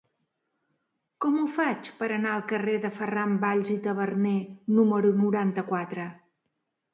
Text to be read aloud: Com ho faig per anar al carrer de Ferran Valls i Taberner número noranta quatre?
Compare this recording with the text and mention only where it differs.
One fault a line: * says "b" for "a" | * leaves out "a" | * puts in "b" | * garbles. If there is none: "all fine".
all fine